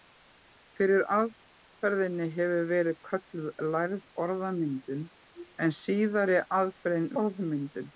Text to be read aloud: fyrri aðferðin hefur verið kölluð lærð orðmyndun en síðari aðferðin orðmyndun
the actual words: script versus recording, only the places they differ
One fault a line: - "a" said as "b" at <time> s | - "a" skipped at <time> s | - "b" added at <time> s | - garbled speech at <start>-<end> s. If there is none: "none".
none